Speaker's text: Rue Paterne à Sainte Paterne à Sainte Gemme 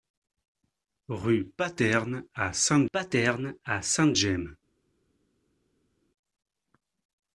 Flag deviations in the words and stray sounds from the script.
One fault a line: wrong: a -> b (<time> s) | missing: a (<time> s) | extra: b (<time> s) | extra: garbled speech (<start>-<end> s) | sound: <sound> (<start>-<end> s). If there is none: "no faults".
no faults